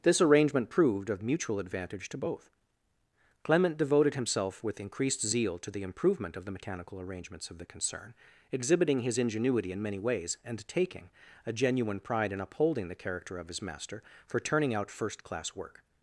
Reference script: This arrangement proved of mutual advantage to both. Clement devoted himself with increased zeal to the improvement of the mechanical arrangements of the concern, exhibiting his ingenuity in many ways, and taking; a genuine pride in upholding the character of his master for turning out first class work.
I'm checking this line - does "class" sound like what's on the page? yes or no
yes